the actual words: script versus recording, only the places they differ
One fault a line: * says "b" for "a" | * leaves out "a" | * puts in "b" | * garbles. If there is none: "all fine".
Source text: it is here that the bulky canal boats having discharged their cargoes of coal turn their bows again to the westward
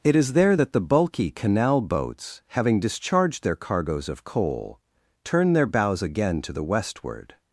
* says "there" for "here"